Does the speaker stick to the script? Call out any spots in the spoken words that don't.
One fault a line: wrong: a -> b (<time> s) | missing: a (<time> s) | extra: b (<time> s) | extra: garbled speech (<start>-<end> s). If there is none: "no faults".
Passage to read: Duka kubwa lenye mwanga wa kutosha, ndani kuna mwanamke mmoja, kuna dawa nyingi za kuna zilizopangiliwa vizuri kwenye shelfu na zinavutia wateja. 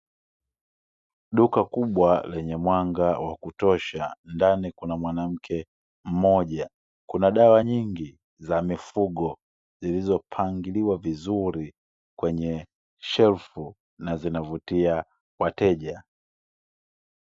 wrong: kuna -> mifugo (8.6 s)